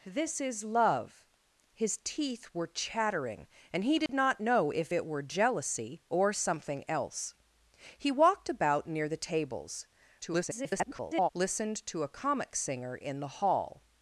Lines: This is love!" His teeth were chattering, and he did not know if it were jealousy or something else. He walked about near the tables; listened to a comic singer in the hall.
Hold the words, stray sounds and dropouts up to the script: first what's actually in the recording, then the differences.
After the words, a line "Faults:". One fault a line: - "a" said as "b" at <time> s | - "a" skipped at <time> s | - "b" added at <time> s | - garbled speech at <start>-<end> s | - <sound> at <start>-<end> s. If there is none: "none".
This is love!" His teeth were chattering, and he did not know if it were jealousy or something else. He walked about near the tables; [garbled] listened to a comic singer in the hall.
Faults:
- dropout at 4.1-4.1 s
- garbled speech at 10.2-11.3 s